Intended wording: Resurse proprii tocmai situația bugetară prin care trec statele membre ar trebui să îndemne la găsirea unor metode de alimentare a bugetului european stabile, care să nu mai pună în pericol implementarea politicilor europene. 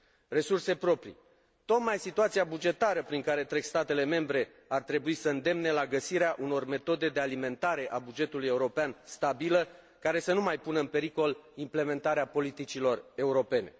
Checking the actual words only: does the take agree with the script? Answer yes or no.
yes